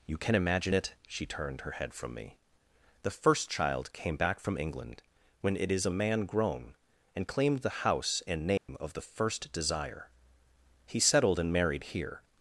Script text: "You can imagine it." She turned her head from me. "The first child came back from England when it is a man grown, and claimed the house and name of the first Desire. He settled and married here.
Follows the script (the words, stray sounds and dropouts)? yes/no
no